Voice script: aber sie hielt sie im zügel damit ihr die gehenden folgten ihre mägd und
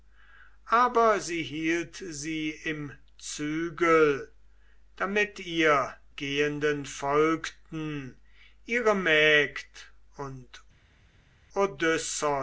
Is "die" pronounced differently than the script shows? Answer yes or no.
yes